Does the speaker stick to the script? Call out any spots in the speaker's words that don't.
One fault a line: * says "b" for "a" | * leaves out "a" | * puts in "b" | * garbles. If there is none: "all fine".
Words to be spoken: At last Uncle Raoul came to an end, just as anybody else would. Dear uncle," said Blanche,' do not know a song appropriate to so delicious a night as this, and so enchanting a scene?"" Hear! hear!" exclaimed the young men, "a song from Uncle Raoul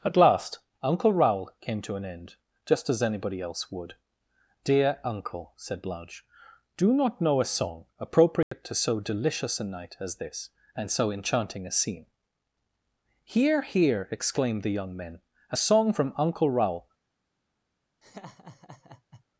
all fine